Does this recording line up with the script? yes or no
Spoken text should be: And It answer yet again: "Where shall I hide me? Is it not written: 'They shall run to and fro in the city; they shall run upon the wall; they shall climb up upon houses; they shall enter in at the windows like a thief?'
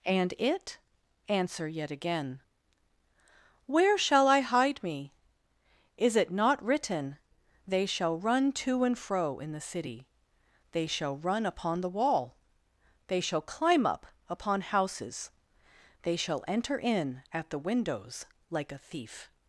yes